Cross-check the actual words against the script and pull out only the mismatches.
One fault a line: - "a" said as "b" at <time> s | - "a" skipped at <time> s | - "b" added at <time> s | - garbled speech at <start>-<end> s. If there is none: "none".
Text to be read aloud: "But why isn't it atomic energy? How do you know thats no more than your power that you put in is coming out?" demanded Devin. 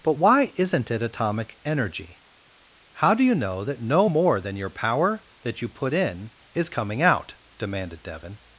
- "thats" said as "that" at 3.6 s